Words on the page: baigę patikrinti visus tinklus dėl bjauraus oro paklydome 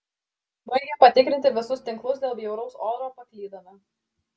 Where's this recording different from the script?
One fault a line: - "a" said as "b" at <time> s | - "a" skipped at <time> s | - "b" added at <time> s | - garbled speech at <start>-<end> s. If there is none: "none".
none